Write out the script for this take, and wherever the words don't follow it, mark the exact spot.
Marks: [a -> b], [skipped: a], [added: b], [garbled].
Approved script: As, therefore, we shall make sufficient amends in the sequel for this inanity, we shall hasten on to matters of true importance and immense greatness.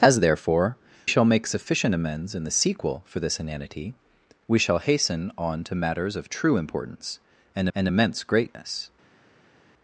As, therefore, [skipped: we] shall make sufficient amends in the sequel for this inanity, we shall hasten on to matters of true importance and [added: and] immense greatness.